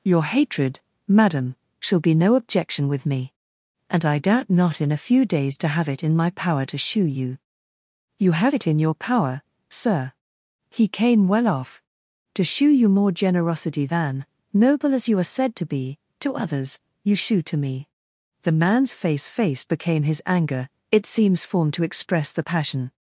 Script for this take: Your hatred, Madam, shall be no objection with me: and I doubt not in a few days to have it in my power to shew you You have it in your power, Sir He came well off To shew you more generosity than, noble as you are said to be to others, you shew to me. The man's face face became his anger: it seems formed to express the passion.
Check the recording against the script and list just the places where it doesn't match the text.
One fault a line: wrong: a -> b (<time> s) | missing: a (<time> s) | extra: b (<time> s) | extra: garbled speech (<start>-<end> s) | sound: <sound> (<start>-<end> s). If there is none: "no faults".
no faults